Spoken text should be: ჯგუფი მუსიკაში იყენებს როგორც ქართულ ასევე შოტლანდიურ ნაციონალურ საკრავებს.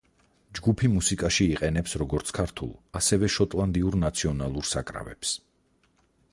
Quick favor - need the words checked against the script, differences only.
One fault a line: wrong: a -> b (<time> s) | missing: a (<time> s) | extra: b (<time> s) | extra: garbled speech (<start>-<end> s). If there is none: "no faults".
no faults